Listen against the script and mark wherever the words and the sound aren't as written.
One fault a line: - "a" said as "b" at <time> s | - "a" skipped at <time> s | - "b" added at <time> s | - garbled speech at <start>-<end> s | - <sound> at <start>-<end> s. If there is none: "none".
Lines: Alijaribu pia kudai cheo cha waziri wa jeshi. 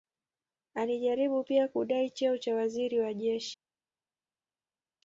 none